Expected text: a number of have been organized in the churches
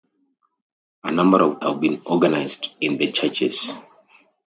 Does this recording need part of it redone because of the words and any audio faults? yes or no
no